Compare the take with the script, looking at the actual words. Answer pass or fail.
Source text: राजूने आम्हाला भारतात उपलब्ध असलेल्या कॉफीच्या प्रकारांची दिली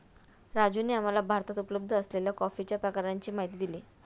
fail